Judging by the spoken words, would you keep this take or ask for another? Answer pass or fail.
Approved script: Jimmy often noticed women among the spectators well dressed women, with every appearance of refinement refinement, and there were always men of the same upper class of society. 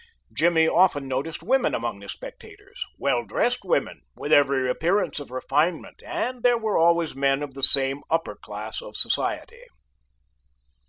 fail